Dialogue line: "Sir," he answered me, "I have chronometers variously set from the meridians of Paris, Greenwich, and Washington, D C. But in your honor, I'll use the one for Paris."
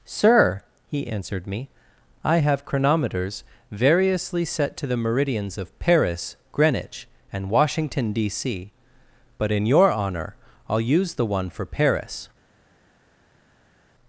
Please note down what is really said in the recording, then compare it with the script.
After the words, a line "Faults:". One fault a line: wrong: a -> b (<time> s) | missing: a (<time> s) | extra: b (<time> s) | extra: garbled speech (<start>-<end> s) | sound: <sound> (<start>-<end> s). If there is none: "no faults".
"Sir," he answered me, "I have chronometers variously set to the meridians of Paris, Greenwich, and Washington, D C. But in your honor, I'll use the one for Paris."
Faults:
wrong: from -> to (4.8 s)